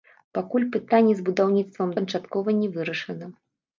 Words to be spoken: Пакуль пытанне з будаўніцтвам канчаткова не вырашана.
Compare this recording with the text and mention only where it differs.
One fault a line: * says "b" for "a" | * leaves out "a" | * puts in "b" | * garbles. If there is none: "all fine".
all fine